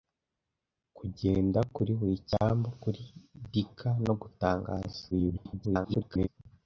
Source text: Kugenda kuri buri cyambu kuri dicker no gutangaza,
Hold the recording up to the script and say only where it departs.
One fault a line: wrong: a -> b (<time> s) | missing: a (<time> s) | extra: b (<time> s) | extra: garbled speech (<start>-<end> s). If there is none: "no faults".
extra: garbled speech (5.1-6.3 s)